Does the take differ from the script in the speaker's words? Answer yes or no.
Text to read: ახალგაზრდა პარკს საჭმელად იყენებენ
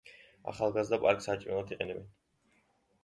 no